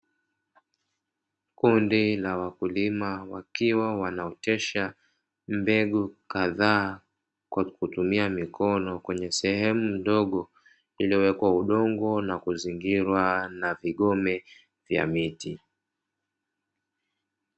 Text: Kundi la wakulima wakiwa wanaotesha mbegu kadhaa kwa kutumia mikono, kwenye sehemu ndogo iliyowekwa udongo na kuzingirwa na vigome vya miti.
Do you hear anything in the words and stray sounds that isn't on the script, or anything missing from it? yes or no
no